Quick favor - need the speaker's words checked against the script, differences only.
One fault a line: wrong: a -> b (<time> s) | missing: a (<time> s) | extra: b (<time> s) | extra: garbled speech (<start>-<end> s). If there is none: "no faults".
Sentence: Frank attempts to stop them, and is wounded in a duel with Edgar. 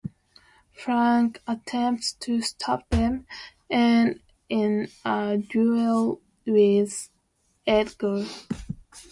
missing: is wounded (4.2 s)